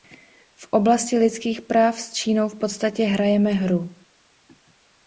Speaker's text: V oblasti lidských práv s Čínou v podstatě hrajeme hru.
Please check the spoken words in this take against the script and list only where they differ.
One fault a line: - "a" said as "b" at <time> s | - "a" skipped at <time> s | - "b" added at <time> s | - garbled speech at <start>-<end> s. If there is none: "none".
none